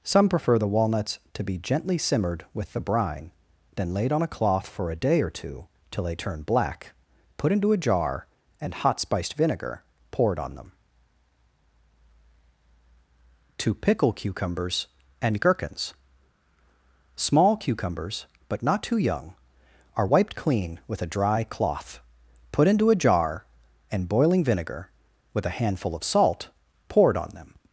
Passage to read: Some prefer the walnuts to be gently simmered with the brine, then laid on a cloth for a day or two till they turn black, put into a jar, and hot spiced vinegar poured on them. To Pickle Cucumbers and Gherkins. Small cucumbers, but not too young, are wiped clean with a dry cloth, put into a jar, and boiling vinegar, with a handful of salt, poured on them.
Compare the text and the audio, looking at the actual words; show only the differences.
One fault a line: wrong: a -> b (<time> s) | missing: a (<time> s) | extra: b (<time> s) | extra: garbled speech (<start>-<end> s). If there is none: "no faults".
no faults